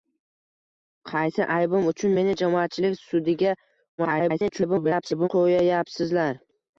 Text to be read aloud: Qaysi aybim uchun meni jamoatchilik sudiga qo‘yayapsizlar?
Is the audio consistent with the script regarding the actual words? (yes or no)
no